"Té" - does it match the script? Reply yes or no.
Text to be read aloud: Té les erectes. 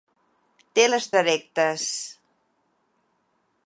yes